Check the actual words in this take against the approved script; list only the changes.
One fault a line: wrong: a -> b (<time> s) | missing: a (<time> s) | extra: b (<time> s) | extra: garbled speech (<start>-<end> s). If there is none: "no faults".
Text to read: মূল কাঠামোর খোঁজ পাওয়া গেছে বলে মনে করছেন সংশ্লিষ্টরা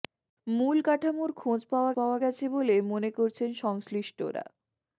extra: পাওয়া (2.0 s)